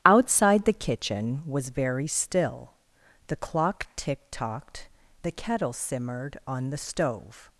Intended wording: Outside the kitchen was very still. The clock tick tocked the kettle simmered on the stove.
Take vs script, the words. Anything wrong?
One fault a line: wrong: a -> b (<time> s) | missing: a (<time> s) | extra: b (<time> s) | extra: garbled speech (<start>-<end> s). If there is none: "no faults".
no faults